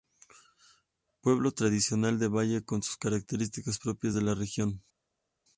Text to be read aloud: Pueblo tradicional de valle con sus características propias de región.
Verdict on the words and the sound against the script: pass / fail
fail